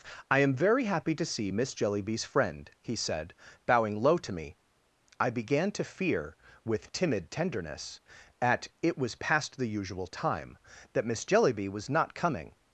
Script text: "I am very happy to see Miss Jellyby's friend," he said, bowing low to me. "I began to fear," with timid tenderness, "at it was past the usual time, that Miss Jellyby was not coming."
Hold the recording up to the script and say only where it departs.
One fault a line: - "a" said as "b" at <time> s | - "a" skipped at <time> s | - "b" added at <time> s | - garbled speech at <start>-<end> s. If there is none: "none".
none